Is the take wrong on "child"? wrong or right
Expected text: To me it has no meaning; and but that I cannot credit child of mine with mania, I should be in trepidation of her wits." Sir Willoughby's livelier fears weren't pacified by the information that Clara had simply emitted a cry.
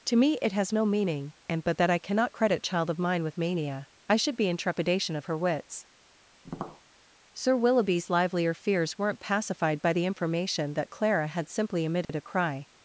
right